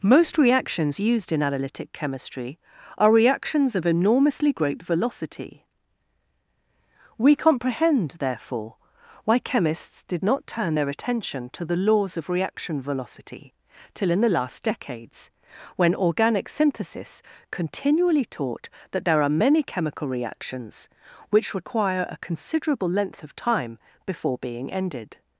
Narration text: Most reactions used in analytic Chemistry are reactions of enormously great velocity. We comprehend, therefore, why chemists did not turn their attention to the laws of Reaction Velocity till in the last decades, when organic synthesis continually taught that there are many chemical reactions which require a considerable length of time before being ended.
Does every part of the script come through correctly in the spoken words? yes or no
yes